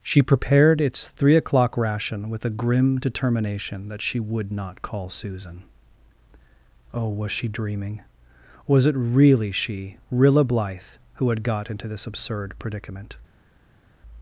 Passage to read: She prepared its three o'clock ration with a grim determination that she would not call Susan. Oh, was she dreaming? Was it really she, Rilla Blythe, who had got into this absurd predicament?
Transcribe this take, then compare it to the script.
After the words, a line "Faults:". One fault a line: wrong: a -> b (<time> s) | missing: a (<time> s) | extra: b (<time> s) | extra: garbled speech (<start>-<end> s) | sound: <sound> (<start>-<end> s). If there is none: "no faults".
She prepared its three o'clock ration with a grim determination that she would not call Susan. Oh, was she dreaming? Was it really she, Rilla Blythe, who had got into this absurd predicament?
Faults:
no faults